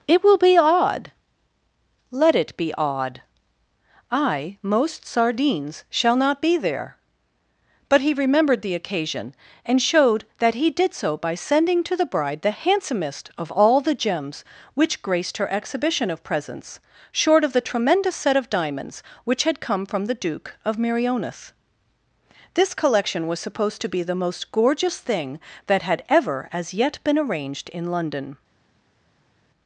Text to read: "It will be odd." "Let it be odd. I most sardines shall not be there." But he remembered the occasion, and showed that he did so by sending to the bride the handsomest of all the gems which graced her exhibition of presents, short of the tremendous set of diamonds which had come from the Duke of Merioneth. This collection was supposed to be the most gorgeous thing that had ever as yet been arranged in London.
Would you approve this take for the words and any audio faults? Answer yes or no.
yes